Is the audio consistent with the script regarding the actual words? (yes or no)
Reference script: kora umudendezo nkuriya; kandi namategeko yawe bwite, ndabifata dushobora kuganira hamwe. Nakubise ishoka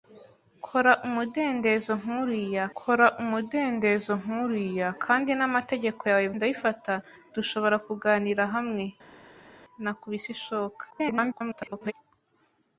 no